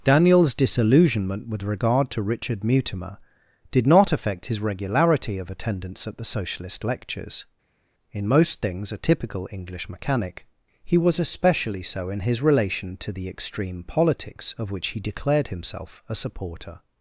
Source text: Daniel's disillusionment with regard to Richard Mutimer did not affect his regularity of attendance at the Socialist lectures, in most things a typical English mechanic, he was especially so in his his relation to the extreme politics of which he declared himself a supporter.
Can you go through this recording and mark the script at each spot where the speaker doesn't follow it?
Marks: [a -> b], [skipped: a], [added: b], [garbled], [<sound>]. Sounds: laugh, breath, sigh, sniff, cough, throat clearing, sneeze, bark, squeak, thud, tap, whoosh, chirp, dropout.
Daniel's disillusionment with regard to Richard Mutimer did not affect his regularity of attendance at the Socialist lectures, in most things a typical English mechanic, he was especially so in his [skipped: his] relation to the extreme politics of which he declared himself a supporter.